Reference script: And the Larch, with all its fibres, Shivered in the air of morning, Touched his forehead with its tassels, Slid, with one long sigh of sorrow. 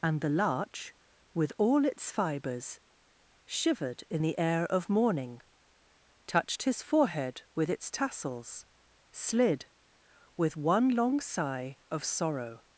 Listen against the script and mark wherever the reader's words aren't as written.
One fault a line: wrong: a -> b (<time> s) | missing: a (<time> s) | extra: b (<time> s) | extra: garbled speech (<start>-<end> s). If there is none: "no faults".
no faults